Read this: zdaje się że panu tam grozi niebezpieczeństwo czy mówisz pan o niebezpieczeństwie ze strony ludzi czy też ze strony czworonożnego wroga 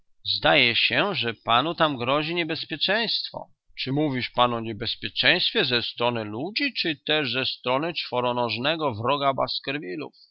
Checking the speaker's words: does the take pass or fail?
pass